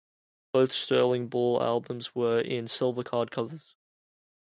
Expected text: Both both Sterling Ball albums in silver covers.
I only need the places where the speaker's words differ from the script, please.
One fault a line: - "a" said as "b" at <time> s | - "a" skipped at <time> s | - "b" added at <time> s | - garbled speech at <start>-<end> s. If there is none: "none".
- "both" skipped at 0.7 s
- "were" added at 2.1 s
- "card" added at 3.0 s